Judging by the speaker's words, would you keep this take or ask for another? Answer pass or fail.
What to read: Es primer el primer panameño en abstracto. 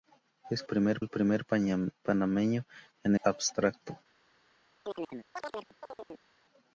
pass